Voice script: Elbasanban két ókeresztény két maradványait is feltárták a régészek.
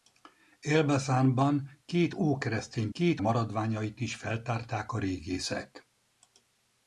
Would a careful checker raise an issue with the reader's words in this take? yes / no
no